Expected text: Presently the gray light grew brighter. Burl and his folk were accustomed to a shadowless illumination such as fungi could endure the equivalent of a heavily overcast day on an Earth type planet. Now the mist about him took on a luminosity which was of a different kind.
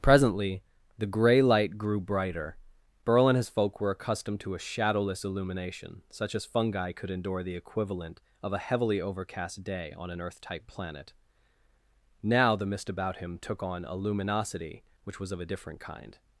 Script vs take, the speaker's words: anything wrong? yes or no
no